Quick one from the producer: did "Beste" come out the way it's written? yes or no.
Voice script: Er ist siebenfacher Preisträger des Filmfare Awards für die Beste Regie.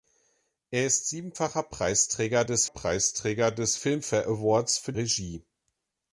no